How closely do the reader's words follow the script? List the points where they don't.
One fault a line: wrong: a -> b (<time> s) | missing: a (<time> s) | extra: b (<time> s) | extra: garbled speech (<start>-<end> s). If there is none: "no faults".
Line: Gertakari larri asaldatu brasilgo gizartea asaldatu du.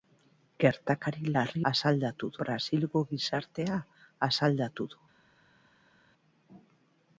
no faults